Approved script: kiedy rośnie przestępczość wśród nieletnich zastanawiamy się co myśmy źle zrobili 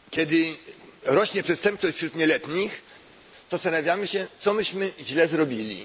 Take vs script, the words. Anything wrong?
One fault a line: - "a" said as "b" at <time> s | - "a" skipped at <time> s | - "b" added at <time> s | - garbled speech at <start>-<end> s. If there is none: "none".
none